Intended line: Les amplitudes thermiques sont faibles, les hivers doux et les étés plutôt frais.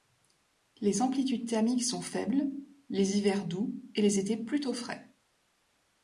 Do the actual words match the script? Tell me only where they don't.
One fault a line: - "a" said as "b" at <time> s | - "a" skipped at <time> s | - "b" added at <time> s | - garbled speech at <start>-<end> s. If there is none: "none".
none